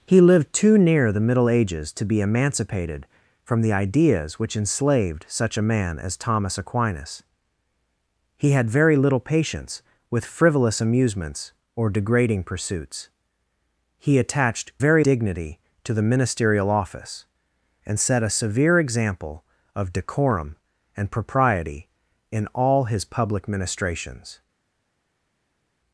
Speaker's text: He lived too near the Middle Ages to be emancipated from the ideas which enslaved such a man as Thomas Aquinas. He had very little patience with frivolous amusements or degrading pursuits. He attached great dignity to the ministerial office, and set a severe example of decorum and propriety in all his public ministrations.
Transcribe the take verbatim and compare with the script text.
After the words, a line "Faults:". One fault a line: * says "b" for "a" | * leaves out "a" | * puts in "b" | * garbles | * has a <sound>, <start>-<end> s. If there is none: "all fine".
He lived too near the Middle Ages to be emancipated from the ideas which enslaved such a man as Thomas Aquinas. He had very little patience with frivolous amusements or degrading pursuits. He attached very dignity to the ministerial office, and set a severe example of decorum and propriety in all his public ministrations.
Faults:
* says "very" for "great"